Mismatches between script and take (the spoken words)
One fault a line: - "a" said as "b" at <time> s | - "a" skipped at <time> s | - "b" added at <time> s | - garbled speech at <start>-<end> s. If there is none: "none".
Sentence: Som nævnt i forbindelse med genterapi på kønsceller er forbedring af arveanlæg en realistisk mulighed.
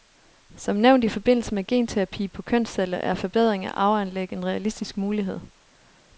none